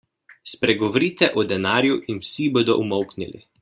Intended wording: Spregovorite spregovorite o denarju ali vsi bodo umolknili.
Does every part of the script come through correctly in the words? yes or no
no